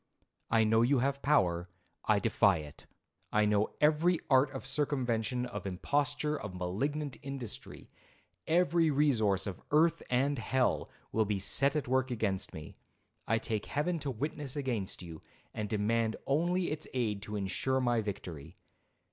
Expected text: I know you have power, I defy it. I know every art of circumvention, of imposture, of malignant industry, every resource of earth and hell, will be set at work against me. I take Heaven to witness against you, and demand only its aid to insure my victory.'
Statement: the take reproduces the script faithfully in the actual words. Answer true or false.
true